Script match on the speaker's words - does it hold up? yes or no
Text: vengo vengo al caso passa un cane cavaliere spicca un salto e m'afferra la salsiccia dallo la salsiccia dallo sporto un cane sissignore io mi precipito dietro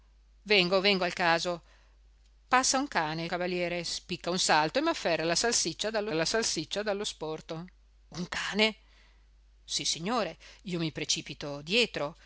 yes